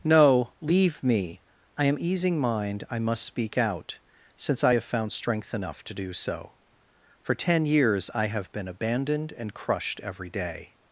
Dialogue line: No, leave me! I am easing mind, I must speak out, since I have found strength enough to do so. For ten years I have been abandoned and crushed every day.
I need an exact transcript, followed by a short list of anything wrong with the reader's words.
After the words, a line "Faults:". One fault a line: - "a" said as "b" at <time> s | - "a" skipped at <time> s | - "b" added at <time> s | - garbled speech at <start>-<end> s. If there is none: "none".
No, leave me! I am easing mind, I must speak out, since I have found strength enough to do so. For ten years I have been abandoned and crushed every day.
Faults:
none